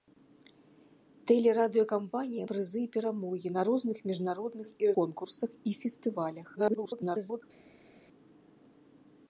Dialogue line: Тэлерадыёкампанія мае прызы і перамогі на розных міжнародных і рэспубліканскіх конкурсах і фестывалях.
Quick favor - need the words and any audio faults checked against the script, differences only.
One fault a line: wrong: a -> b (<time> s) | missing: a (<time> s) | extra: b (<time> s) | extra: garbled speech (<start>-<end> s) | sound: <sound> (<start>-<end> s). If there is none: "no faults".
missing: мае (2.5 s)
missing: рэспубліканскіх (4.9 s)
extra: garbled speech (6.6-7.4 s)